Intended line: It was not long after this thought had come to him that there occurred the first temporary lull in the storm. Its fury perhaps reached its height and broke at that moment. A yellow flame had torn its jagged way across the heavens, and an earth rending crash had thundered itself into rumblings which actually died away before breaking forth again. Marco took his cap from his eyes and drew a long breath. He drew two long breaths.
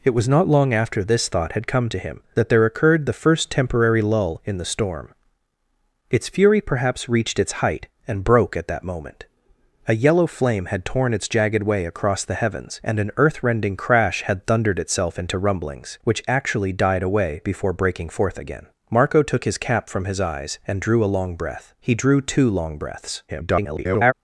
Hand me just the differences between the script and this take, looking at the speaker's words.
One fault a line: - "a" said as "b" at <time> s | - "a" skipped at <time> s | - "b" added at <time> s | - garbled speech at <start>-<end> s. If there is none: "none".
- garbled speech at 23.3-24.1 s